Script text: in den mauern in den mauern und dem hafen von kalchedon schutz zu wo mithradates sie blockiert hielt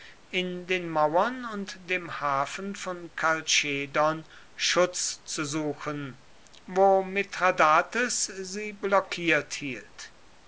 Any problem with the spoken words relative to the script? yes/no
yes